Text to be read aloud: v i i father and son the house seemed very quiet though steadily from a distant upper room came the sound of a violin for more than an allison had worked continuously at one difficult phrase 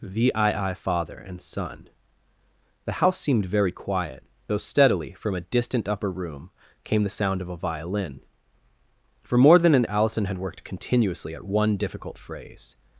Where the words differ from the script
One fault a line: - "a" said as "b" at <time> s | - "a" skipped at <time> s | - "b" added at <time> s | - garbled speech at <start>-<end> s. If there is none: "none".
none